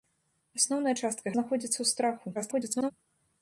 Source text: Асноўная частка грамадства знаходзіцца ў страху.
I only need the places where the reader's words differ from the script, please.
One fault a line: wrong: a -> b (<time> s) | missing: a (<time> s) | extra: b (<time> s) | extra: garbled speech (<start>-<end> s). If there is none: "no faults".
missing: грамадства (1.3 s)
extra: garbled speech (2.3-2.9 s)